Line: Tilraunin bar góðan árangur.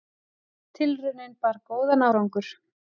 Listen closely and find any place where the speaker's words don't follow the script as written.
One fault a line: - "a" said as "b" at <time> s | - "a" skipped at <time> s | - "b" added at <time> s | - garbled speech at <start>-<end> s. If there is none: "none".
none